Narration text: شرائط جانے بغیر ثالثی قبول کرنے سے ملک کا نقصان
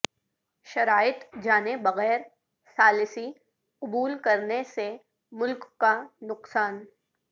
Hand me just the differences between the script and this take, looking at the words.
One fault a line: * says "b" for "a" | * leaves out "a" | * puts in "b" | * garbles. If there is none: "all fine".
all fine